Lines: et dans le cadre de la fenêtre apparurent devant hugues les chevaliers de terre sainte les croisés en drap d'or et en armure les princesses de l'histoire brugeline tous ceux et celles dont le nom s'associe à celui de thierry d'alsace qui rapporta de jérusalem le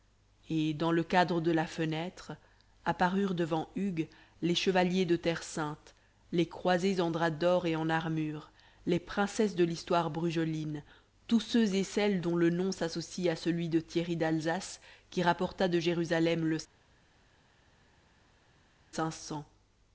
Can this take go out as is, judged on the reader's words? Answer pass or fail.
pass